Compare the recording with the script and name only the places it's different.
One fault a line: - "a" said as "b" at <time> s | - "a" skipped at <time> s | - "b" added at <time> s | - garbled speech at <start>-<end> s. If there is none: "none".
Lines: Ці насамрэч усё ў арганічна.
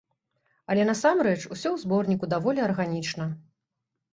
- "Ці" said as "Але" at 0.7 s
- "зборніку даволі" added at 1.8 s